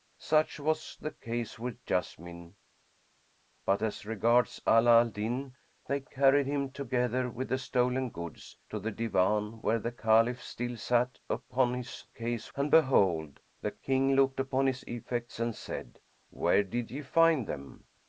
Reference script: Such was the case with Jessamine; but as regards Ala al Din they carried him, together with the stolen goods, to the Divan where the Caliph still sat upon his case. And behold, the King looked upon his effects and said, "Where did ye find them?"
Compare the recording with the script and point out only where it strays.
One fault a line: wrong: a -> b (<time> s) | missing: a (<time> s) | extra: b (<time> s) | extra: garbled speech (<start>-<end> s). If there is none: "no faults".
no faults